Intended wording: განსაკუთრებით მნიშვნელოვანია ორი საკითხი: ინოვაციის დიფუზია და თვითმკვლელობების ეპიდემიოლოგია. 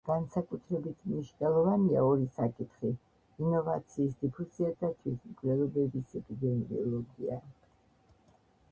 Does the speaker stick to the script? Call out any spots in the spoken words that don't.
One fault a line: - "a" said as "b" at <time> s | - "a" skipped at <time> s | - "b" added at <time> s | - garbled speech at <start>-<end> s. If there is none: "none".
none